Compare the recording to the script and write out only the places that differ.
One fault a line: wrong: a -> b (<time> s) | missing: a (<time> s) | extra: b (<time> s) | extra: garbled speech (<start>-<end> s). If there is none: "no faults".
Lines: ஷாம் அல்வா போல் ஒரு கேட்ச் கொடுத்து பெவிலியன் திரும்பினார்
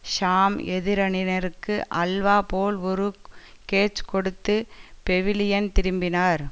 extra: எதிரணியினருக்கு (0.7 s)